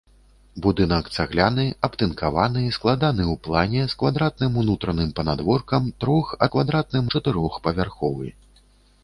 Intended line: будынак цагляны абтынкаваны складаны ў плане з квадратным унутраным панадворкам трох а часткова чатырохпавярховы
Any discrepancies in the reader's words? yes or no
yes